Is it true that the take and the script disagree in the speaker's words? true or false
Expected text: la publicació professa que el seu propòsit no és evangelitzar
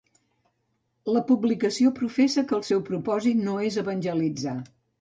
false